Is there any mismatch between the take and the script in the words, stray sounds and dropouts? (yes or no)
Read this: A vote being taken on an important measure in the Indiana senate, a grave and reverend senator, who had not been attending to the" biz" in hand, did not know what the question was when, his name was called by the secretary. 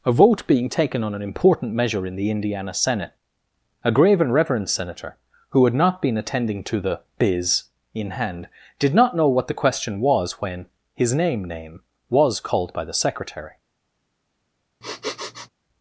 yes